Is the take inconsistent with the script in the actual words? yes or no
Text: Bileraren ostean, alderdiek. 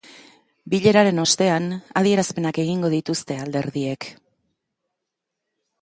yes